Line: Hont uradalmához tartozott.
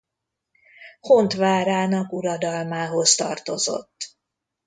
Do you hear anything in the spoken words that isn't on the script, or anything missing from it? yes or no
yes